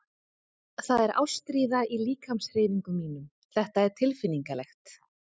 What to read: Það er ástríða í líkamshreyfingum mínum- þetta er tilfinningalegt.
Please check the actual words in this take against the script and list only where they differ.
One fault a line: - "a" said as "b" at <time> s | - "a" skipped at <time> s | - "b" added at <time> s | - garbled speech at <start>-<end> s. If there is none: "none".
none